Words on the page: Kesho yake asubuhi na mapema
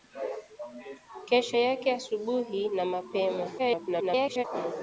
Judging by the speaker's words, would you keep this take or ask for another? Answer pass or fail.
fail